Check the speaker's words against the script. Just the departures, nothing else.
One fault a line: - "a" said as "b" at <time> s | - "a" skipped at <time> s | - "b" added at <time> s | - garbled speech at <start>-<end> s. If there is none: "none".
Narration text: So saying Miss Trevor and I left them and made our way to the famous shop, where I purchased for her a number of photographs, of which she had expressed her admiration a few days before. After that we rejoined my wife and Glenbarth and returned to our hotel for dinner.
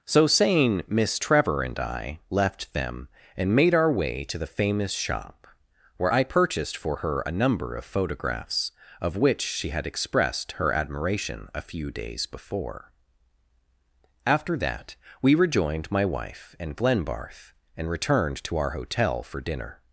none